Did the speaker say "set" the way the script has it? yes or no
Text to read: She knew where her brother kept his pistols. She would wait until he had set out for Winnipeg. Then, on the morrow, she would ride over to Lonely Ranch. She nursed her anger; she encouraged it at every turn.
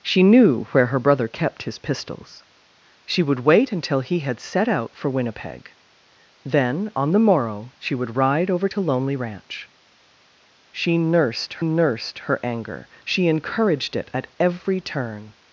yes